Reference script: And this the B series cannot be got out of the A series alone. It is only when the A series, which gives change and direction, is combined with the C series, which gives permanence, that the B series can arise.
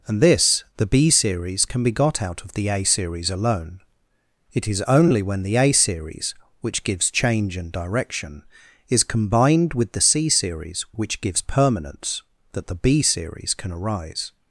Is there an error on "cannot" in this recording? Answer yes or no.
yes